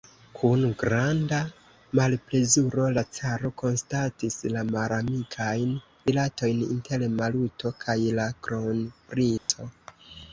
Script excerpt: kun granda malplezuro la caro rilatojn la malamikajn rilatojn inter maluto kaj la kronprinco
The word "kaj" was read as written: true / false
true